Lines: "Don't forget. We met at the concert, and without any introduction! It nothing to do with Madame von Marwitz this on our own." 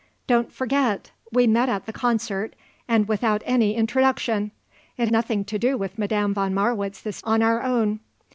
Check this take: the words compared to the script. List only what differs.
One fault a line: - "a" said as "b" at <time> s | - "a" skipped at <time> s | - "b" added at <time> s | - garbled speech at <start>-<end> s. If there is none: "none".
none